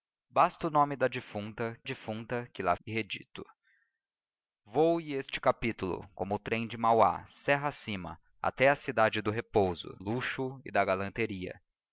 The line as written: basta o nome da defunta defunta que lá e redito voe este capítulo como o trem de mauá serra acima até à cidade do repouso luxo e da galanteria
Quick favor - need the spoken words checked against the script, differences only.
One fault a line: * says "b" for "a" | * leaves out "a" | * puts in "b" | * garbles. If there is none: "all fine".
all fine